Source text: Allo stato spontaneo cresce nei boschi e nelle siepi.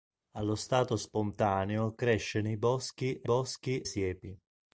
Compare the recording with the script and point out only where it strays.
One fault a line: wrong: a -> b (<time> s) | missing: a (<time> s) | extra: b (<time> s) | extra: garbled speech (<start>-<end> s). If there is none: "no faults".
wrong: nelle -> boschi (3.2 s)